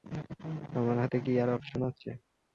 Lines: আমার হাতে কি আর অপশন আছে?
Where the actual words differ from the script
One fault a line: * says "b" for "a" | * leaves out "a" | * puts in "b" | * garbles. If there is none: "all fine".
all fine